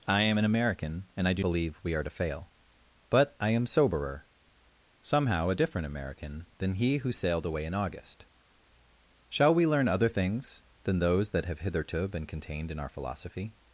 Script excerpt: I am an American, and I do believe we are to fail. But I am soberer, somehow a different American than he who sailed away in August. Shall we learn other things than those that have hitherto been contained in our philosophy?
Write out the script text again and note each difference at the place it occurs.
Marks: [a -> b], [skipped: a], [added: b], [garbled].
I am an American, and I do believe we are to fail. But I am soberer, somehow a different American than he who sailed away in August. Shall we learn other things than those that have hitherto been contained in our philosophy?